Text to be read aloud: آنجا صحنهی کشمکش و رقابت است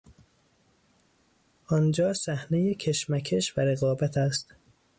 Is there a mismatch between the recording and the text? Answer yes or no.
no